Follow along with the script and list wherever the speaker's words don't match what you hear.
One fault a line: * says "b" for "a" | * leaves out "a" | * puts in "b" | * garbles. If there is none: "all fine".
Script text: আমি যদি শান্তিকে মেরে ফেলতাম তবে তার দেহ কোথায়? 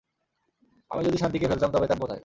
* leaves out "মেরে"
* leaves out "দেহ"